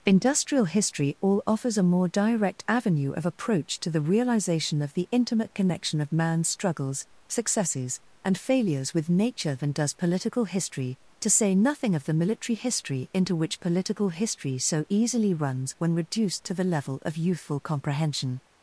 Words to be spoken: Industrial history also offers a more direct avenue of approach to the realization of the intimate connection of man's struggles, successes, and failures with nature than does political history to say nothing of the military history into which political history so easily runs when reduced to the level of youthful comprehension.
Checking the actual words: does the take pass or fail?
fail